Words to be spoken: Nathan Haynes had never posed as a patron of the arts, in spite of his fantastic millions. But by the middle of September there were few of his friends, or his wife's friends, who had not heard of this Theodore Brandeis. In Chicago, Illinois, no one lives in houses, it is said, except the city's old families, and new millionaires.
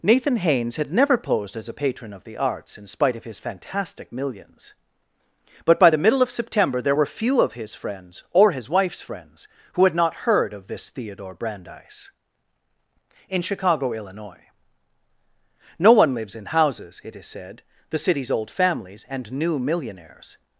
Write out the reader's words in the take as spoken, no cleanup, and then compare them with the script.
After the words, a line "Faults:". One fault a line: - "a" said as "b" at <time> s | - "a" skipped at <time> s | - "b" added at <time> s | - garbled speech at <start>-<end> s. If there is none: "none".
Nathan Haynes had never posed as a patron of the arts, in spite of his fantastic millions. But by the middle of September there were few of his friends, or his wife's friends, who had not heard of this Theodore Brandeis. In Chicago, Illinois, no one lives in houses, it is said, the city's old families, and new millionaires.
Faults:
- "except" skipped at 17.6 s